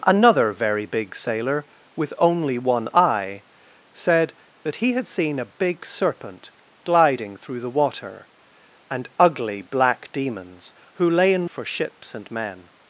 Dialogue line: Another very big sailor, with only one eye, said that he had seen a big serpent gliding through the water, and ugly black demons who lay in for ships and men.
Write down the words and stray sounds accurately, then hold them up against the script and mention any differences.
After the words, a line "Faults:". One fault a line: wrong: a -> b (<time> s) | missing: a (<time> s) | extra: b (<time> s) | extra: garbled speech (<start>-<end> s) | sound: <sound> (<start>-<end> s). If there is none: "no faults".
Another very big sailor, with only one eye, said that he had seen a big serpent gliding through the water, and ugly black demons who lay in for ships and men.
Faults:
no faults